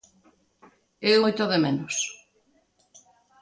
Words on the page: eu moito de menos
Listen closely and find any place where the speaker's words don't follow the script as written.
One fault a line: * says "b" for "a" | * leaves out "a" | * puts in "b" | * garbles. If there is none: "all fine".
all fine